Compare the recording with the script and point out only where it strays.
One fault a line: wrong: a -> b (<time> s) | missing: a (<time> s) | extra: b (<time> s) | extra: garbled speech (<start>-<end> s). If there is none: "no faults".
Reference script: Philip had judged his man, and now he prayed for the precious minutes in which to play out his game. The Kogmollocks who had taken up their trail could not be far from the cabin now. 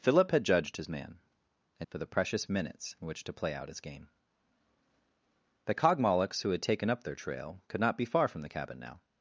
missing: now he prayed (1.9 s)